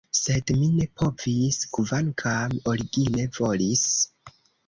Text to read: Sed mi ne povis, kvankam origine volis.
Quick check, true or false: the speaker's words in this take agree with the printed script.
true